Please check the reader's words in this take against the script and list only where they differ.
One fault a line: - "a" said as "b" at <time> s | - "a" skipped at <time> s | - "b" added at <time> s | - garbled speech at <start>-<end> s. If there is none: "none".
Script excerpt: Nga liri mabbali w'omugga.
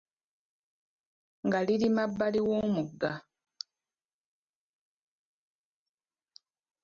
none